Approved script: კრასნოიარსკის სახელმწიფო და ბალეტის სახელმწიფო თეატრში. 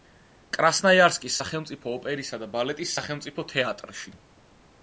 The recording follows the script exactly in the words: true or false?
false